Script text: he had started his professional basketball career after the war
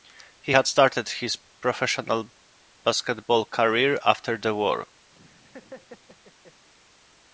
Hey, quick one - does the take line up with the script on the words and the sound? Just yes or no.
no